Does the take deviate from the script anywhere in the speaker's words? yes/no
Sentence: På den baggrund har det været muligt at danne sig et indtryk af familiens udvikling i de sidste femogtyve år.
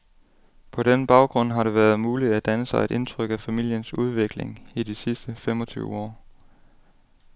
no